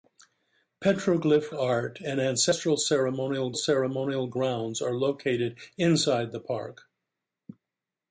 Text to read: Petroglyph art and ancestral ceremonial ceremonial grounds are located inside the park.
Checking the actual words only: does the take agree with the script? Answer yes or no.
yes